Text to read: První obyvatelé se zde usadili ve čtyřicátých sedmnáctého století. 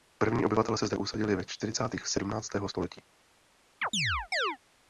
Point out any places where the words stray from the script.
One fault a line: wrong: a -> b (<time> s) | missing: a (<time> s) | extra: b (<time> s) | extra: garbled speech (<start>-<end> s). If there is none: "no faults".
no faults